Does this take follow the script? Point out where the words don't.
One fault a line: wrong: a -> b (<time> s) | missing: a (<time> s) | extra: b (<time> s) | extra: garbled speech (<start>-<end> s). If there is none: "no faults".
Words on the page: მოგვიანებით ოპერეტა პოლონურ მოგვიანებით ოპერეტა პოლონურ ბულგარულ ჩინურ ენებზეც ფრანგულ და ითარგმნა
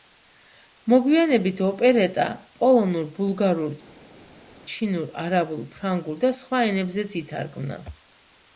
missing: მოგვიანებით ოპერეტა პოლონურ (3.1 s)
wrong: ენებზეც -> არაბულ (5.2 s)
extra: სხვა ენებზეც (6.4 s)